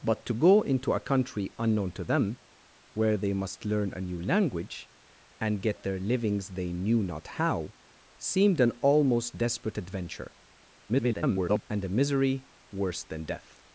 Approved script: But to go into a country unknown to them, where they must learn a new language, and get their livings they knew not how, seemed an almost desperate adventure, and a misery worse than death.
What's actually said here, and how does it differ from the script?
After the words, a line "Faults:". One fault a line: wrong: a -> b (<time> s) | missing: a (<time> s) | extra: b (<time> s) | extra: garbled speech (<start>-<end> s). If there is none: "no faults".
But to go into a country unknown to them, where they must learn a new language, and get their livings they knew not how, seemed an almost desperate adventure, [garbled] and a misery worse than death.
Faults:
extra: garbled speech (10.9-11.6 s)